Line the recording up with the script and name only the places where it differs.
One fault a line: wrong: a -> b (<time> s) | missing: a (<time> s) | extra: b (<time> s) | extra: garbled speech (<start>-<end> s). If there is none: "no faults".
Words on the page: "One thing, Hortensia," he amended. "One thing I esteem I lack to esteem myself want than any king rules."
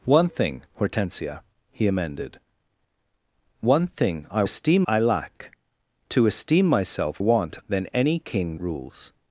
no faults